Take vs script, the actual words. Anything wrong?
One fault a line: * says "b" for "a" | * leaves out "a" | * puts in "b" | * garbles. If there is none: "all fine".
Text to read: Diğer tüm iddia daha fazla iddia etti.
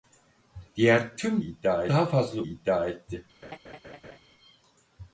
all fine